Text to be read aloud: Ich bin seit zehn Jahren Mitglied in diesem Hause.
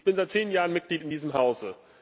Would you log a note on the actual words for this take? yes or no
no